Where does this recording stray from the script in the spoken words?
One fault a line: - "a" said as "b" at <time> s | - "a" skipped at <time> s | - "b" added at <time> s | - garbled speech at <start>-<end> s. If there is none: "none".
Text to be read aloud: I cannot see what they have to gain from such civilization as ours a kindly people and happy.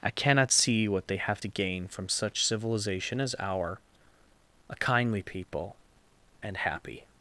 - "ours" said as "our" at 3.4 s